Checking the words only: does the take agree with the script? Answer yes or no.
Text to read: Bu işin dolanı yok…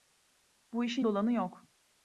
yes